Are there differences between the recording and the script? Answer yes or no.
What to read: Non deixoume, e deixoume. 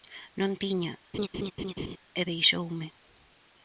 yes